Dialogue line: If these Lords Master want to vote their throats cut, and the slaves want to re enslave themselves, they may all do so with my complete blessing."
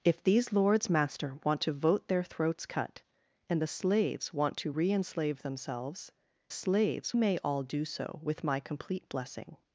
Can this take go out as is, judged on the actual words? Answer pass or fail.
fail